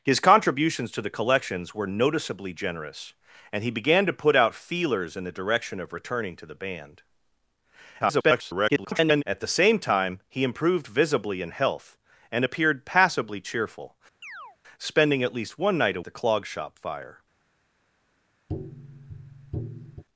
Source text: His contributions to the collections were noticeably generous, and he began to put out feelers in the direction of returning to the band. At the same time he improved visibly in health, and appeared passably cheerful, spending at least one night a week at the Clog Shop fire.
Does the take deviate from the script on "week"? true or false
true